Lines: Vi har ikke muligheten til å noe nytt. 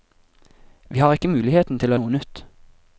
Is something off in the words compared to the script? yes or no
no